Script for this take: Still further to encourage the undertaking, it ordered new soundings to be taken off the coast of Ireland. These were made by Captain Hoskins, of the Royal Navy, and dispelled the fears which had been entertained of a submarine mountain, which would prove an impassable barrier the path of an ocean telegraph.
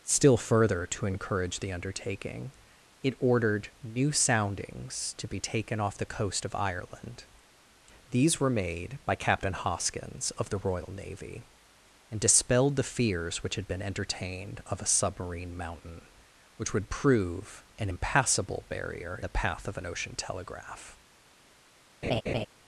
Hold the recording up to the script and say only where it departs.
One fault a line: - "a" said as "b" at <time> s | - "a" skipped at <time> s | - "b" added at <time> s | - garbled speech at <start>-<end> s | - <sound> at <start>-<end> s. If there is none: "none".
- laugh at 22.0-22.5 s